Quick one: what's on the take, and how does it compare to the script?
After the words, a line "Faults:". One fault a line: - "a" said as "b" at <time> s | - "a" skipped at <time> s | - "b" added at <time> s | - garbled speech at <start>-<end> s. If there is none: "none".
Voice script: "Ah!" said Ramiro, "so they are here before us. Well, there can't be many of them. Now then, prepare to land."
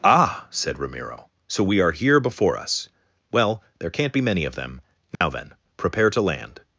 "Ah!" said Ramiro, "so we are here before us. Well, there can't be many of them. Now then, prepare to land."
Faults:
- "they" said as "we" at 1.6 s